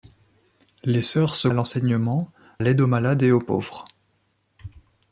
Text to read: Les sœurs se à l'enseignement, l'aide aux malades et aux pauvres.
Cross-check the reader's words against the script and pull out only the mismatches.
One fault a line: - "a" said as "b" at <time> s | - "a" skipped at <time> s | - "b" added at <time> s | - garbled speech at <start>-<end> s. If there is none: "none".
none